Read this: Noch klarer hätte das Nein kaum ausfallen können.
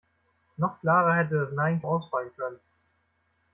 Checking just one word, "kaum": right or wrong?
wrong